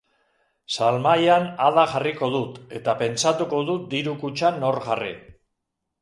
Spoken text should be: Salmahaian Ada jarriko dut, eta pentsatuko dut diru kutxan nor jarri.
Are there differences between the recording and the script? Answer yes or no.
no